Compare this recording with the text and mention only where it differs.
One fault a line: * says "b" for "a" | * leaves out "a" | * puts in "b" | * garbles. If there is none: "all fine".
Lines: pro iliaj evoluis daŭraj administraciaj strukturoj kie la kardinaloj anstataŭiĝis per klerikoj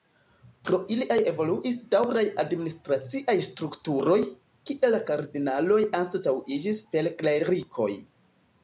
all fine